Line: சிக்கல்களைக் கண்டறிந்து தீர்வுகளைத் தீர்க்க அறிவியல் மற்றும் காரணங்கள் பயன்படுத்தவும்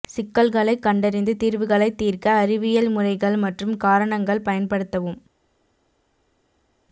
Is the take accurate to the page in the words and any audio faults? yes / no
no